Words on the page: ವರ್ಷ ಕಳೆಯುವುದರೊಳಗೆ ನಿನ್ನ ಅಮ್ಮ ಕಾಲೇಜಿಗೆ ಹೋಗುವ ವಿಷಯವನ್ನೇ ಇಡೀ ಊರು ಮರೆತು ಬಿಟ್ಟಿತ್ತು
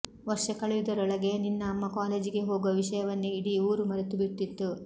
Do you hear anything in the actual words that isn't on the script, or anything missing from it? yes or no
no